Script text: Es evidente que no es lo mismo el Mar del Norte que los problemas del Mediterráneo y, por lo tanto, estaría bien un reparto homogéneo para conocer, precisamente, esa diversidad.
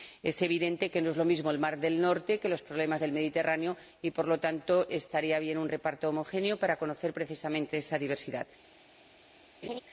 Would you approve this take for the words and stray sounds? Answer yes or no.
no